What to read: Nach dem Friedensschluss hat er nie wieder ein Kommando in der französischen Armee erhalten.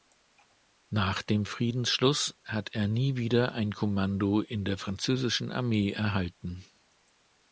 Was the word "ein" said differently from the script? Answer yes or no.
no